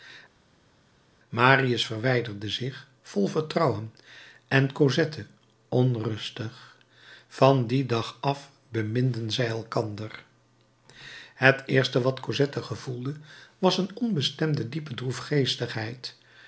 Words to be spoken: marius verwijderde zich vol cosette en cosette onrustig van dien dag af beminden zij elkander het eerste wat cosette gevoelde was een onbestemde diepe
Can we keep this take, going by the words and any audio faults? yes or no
no